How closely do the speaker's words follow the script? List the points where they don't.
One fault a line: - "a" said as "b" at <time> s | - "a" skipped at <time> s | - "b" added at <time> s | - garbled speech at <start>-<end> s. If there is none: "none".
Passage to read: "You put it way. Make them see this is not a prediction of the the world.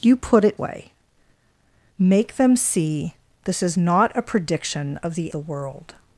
none